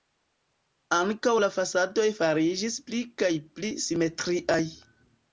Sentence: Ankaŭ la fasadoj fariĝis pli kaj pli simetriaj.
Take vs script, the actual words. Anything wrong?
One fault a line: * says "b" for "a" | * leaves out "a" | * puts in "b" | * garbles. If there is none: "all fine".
all fine